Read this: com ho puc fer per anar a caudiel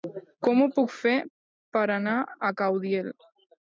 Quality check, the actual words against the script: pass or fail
pass